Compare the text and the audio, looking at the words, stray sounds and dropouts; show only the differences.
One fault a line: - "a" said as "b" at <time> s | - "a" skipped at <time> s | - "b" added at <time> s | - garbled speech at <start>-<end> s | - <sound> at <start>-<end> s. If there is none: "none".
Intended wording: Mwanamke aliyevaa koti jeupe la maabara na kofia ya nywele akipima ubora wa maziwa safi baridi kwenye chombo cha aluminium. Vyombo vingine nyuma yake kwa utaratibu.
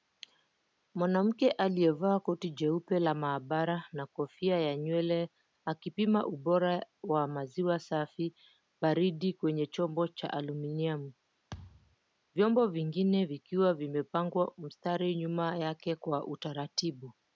- thud at 11.5-12.0 s
- "vikiwa vimepangwa mstari" added at 13.2 s